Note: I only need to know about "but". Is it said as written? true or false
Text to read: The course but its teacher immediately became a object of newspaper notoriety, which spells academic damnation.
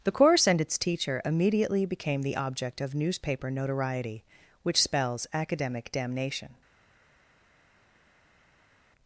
false